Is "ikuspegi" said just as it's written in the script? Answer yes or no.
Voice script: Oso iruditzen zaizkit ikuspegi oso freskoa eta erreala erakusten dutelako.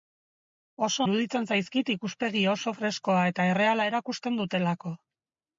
yes